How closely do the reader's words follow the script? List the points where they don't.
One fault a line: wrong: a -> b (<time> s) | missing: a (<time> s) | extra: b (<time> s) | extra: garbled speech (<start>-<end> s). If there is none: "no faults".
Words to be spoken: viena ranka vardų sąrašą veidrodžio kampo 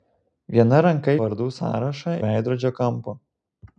no faults